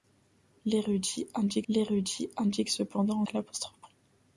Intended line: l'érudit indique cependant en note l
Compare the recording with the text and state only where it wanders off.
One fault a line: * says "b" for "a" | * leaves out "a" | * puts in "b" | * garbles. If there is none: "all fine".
* puts in "l'érudit indique"
* leaves out "note"